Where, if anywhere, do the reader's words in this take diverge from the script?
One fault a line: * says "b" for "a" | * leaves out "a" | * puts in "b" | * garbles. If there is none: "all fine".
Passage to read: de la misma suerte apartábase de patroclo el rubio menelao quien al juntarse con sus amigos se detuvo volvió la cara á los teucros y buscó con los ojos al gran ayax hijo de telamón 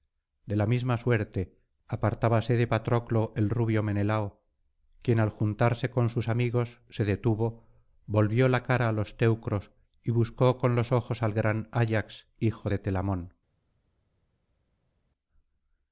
all fine